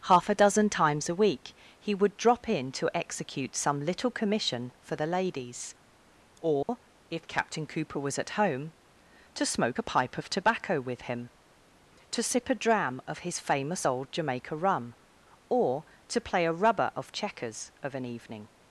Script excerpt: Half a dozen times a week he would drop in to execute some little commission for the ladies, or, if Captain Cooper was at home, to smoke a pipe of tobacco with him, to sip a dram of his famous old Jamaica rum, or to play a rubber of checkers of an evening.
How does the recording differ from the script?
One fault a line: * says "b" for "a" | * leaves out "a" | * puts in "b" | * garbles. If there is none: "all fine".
all fine